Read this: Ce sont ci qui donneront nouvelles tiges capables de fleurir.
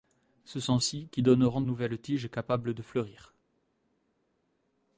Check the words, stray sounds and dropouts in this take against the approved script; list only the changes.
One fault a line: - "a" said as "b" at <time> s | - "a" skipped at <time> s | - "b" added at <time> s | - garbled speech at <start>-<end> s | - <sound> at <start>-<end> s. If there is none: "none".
none